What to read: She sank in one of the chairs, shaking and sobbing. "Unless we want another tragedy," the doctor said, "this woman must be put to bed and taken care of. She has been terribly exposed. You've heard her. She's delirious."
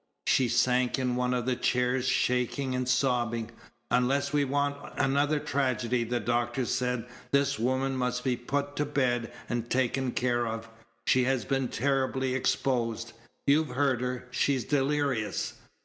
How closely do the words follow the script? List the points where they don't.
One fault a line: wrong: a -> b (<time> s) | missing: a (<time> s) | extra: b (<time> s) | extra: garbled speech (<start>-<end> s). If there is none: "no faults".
no faults